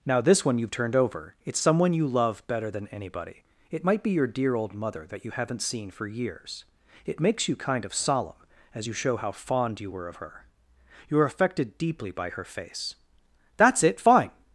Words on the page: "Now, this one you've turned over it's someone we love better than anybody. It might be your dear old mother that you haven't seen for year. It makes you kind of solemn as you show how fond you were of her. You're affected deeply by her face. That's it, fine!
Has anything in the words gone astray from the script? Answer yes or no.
yes